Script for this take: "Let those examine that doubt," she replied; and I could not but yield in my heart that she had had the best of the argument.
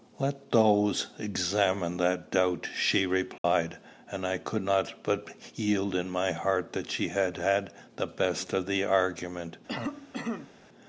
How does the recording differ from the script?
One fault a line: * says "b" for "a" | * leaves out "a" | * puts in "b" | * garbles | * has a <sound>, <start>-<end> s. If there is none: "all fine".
* has a dropout, 3.4-3.4 s
* has a cough, 9.7-10.5 s